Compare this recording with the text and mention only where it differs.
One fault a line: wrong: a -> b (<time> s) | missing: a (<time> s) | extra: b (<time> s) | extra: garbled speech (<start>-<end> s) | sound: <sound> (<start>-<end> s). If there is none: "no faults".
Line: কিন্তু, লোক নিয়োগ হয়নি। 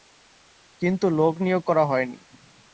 extra: করা (1.6 s)